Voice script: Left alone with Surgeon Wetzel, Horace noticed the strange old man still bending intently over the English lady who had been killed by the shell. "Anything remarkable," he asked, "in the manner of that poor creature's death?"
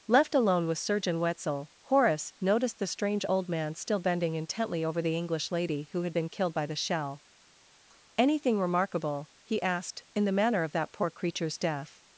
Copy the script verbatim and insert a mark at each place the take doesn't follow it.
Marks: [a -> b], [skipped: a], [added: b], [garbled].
Left alone with Surgeon Wetzel, Horace noticed the strange old man still bending intently over the English lady who had been killed by the shell. "Anything remarkable," he asked, "in the manner of that poor creature's death?"